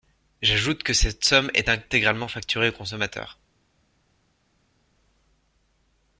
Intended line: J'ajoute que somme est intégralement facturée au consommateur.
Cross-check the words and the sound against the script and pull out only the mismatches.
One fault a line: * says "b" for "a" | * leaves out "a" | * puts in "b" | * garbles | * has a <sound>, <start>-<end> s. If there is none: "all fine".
* puts in "cette"